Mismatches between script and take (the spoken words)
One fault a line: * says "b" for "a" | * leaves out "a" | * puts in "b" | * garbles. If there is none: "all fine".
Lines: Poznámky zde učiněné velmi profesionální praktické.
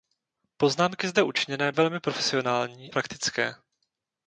all fine